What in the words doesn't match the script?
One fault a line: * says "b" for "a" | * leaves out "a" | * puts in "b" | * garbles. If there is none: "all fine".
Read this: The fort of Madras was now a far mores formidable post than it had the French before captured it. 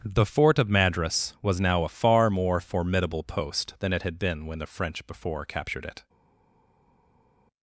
* says "more" for "mores"
* puts in "been when"